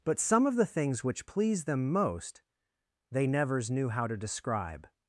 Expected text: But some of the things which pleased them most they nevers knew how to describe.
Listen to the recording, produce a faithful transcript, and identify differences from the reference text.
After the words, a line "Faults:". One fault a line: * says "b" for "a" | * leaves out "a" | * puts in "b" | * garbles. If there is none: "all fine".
But some of the things which pleased them most they nevers knew how to describe.
Faults:
all fine